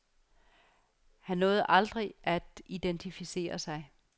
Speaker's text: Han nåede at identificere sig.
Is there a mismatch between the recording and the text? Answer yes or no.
yes